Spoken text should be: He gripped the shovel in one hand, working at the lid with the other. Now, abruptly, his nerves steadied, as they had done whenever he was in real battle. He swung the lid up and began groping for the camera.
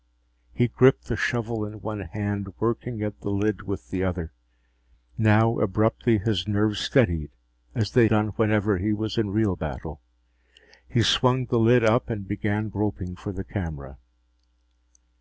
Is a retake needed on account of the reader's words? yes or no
yes